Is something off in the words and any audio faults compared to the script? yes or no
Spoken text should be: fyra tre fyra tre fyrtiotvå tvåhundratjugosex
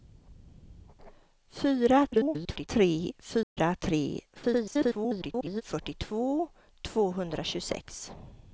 yes